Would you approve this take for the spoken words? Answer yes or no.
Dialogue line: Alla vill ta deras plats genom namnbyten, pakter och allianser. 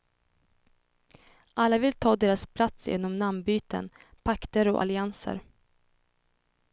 yes